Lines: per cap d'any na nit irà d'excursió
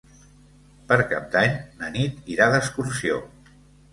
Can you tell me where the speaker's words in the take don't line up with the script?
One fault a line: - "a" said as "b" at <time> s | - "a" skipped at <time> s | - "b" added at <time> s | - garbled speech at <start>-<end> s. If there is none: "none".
none